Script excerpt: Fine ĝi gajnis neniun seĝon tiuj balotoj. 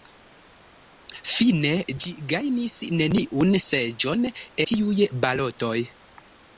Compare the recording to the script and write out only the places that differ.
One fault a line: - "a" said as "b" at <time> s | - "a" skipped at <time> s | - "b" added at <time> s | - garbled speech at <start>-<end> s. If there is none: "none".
none